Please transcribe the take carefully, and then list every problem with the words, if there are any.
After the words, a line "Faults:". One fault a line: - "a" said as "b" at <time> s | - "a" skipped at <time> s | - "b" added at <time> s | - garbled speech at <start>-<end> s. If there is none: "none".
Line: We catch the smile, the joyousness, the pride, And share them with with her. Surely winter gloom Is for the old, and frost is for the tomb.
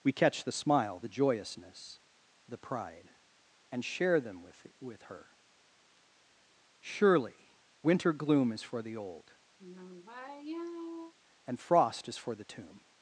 We catch the smile, the joyousness, the pride, And share them with with her. Surely winter gloom Is for the old, and frost is for the tomb.
Faults:
none